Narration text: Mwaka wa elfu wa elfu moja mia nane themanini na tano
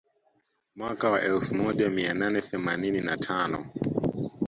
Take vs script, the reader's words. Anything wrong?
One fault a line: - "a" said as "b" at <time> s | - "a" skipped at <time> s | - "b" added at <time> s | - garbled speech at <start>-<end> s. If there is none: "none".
- "wa elfu" skipped at 1.6 s